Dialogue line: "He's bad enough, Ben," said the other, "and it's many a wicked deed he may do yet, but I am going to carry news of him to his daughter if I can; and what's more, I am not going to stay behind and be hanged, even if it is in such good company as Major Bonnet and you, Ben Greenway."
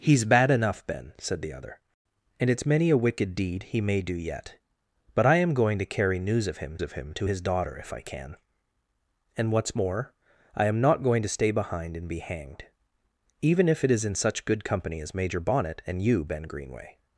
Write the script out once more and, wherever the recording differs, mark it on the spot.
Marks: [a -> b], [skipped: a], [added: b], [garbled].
"He's bad enough, Ben," said the other, "and it's many a wicked deed he may do yet, but I am going to carry news of him [added: of him] to his daughter if I can; and what's more, I am not going to stay behind and be hanged, even if it is in such good company as Major Bonnet and you, Ben Greenway."